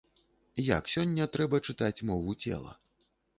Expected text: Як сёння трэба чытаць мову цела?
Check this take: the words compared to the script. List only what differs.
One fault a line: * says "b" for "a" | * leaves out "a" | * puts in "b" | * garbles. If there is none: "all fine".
all fine